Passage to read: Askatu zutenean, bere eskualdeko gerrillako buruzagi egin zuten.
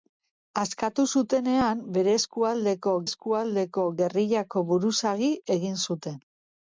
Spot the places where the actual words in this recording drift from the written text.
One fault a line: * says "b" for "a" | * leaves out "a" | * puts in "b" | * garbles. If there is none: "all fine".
* puts in "eskualdeko"